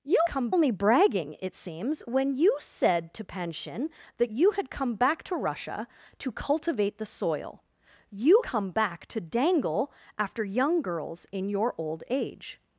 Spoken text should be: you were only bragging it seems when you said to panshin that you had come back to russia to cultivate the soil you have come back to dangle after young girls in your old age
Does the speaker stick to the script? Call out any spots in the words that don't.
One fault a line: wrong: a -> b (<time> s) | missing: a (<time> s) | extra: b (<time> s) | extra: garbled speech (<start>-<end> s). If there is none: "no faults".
wrong: were -> come (0.2 s)
missing: have (8.4 s)